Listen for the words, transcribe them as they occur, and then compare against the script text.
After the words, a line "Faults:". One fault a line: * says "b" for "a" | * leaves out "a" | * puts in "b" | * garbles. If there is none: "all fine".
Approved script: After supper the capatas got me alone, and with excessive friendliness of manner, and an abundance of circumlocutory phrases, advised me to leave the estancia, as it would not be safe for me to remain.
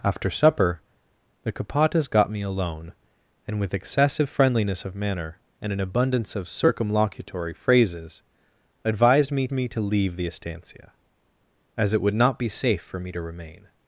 After supper the capatas got me alone, and with excessive friendliness of manner, and an abundance of circumlocutory phrases, advised me me to leave the estancia, as it would not be safe for me to remain.
Faults:
* puts in "me"